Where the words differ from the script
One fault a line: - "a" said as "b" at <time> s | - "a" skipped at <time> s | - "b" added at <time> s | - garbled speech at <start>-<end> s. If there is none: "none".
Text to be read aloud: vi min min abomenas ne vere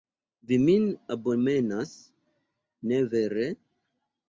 - "min" skipped at 0.9 s